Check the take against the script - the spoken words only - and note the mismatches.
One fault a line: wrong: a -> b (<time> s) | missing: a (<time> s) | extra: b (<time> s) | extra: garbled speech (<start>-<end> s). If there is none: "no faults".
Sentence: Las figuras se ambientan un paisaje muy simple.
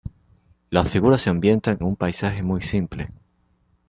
no faults